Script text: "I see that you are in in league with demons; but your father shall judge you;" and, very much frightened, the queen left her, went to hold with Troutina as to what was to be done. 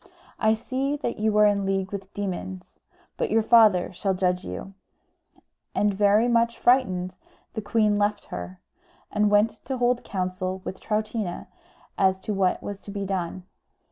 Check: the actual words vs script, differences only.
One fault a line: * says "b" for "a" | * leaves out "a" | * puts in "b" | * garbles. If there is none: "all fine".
* leaves out "in"
* puts in "and"
* puts in "counsel"